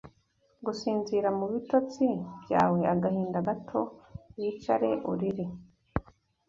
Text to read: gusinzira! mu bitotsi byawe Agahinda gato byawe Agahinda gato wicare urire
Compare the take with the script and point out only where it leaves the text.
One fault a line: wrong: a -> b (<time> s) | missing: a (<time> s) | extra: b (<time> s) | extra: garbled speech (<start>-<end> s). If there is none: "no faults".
missing: byawe Agahinda gato (3.8 s)